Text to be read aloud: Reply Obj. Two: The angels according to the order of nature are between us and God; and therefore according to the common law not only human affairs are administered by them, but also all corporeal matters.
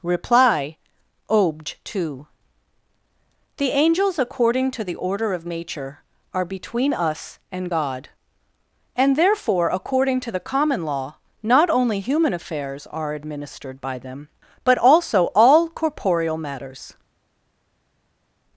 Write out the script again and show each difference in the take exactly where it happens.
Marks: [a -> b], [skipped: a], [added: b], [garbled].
Reply Obj. Two: The angels according to the order of nature are between us and God; and therefore according to the common law not only human affairs are administered by them, but also all corporeal matters.